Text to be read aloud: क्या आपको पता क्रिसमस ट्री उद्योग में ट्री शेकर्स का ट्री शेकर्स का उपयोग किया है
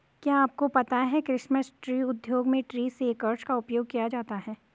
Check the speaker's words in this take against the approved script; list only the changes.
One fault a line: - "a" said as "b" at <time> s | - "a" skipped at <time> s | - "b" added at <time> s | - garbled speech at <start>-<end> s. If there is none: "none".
- "है" added at 1.1 s
- "ट्री शेकर्स का" skipped at 3.5 s
- "जाता" added at 4.1 s